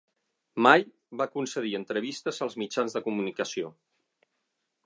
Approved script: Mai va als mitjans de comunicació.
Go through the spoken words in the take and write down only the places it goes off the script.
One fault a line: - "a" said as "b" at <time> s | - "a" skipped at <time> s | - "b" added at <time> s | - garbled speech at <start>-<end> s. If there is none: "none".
- "concedir entrevistes" added at 1.4 s